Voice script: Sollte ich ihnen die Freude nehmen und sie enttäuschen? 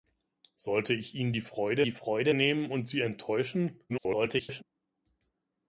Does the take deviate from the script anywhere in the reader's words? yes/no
yes